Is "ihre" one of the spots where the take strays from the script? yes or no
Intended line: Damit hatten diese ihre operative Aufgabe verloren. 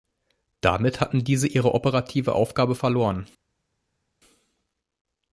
no